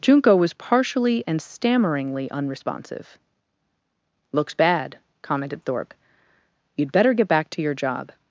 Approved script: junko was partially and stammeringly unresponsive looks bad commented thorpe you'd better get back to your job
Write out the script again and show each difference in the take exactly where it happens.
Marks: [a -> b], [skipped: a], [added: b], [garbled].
junko was partially and stammeringly unresponsive looks bad commented thorpe you'd better get back to your job